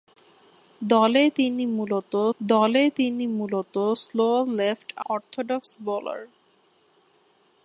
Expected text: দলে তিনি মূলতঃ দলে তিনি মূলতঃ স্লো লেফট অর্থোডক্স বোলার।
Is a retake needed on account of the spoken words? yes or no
no